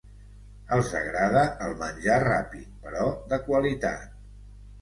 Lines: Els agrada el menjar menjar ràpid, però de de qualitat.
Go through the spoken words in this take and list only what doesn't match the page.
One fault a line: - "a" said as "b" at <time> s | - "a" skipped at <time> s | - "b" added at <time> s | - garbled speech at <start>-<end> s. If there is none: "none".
- "menjar" skipped at 2.2 s
- "de" skipped at 3.4 s